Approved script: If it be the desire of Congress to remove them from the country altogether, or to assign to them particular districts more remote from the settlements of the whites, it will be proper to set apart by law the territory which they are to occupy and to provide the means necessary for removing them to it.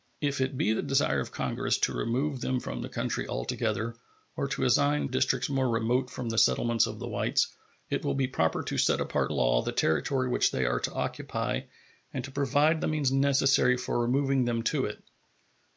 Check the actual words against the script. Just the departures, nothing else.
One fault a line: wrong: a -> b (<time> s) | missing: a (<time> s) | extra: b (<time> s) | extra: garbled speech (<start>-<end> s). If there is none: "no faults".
missing: to them particular (5.1 s)
missing: by (9.3 s)